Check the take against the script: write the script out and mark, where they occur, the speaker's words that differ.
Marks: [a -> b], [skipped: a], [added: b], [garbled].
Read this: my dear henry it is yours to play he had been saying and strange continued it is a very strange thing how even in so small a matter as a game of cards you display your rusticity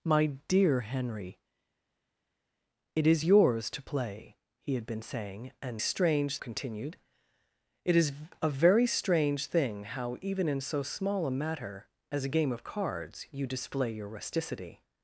my dear henry it is yours to play he had been saying and strange continued it is a very strange thing how even in so small a matter as a game of cards you display your rusticity